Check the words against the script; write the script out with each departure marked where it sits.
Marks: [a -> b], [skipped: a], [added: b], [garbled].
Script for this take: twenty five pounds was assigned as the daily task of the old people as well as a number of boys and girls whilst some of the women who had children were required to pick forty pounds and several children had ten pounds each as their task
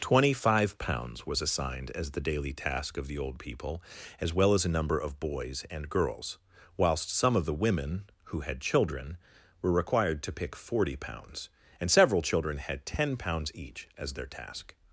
twenty five pounds was assigned as the daily task of the old people as well as a number of boys and girls whilst some of the women who had children were required to pick forty pounds and several children had ten pounds each as their task